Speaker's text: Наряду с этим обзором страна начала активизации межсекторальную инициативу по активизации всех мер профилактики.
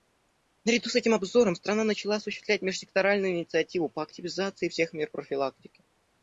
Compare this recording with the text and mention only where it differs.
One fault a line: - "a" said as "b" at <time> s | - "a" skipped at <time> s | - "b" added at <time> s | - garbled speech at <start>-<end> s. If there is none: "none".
- "активизации" said as "осуществлять" at 2.1 s